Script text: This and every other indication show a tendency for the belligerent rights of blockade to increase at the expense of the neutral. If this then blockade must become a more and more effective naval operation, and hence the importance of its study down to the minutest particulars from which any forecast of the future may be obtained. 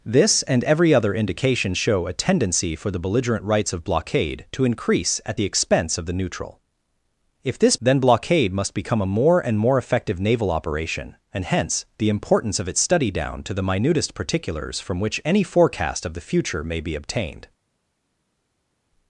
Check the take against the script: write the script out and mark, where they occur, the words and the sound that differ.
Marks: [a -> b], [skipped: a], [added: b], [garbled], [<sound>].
This and every other indication show a tendency for the belligerent rights of blockade to increase at the expense of the neutral. If this then blockade must become a more and more effective naval operation, and hence the importance of its study down to the minutest particulars from which any forecast of the future may be obtained.